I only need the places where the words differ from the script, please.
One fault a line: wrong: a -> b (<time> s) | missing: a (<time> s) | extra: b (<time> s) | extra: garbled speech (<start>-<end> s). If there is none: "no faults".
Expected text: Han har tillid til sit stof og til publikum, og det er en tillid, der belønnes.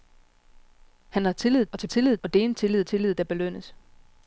missing: til sit stof (1.6 s)
wrong: publikum -> tillid (1.8 s)
extra: tillid (2.8 s)